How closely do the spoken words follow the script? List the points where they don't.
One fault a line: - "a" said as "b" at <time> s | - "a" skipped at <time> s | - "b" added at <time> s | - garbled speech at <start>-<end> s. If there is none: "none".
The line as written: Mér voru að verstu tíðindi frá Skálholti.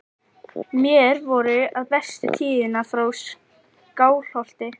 none